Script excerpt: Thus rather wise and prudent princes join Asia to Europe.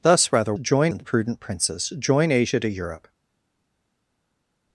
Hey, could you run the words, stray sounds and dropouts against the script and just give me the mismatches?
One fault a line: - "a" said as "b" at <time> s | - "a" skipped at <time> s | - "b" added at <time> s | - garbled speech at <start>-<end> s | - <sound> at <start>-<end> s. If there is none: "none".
- "wise" said as "join" at 0.6 s